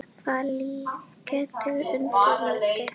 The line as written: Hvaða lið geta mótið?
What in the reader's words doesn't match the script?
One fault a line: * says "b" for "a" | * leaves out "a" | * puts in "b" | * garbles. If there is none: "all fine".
* puts in "unnið"